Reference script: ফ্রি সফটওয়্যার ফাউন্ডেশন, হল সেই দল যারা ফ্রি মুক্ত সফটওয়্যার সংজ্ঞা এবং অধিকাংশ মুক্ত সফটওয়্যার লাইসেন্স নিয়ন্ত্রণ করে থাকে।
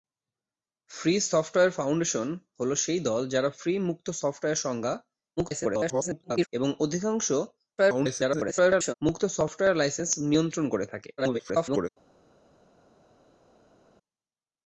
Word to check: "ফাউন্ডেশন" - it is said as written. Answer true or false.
true